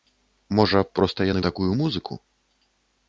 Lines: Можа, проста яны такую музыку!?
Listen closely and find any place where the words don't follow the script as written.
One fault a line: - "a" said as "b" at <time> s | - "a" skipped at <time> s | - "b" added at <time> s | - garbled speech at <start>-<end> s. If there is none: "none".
none